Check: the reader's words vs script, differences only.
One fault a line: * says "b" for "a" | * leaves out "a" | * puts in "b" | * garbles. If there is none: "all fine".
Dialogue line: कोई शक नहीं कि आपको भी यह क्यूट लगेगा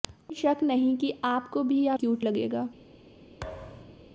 all fine